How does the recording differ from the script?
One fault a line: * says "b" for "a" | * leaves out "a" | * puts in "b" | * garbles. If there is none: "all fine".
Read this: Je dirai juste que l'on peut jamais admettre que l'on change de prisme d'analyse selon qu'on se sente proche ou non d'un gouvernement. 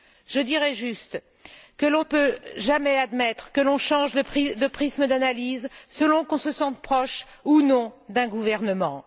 all fine